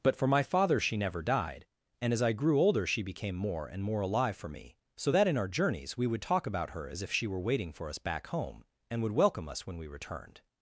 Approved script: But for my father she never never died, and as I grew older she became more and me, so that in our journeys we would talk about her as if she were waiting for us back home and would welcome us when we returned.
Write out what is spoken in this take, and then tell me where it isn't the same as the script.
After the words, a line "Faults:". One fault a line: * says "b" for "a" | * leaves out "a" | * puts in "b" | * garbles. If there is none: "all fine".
But for my father she never died, and as I grew older she became more and more alive for me, so that in our journeys we would talk about her as if she were waiting for us back home and would welcome us when we returned.
Faults:
* leaves out "never"
* puts in "more alive for"